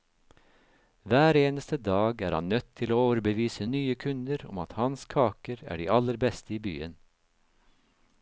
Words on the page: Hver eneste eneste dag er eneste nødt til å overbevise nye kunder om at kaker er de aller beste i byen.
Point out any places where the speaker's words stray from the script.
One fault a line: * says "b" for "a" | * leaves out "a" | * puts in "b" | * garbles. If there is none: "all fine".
* leaves out "eneste"
* says "han" for "eneste"
* puts in "hans"